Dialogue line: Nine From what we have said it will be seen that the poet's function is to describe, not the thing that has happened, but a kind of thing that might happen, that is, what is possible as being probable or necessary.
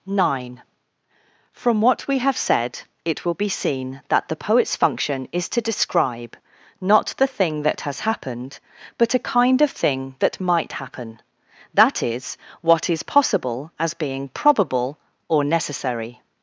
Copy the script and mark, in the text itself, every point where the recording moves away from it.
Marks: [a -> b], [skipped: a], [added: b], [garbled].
Nine From what we have said it will be seen that the poet's function is to describe, not the thing that has happened, but a kind of thing that might happen, that is, what is possible as being probable or necessary.